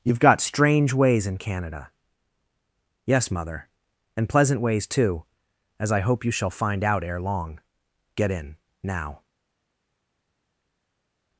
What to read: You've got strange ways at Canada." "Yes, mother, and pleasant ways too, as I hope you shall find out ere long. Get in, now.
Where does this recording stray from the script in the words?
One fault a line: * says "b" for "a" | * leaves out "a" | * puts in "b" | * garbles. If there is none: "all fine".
* says "in" for "at"